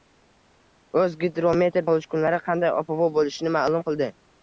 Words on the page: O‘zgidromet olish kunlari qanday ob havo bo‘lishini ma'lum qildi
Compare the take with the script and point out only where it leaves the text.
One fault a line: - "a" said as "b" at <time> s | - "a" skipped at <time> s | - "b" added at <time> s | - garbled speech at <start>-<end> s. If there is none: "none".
none